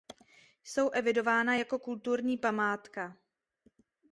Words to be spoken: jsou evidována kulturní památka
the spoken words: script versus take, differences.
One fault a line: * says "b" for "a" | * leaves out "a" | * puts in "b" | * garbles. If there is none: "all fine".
* puts in "jako"